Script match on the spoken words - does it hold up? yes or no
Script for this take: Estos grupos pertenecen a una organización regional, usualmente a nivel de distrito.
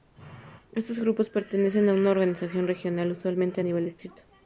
no